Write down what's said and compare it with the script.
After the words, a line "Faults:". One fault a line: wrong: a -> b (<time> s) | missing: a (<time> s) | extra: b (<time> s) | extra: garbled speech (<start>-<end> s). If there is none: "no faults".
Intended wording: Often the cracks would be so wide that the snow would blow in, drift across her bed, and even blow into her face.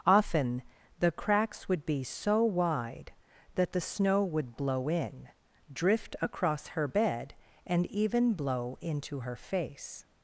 Often the cracks would be so wide that the snow would blow in, drift across her bed, and even blow into her face.
Faults:
no faults